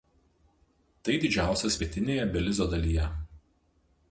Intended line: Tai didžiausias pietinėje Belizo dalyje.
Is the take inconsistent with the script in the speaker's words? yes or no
no